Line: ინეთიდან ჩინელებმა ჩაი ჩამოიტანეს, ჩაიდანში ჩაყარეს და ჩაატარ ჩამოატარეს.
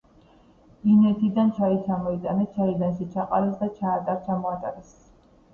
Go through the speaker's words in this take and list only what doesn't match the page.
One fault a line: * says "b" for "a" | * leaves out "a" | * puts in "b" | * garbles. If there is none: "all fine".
* leaves out "ჩინელებმა"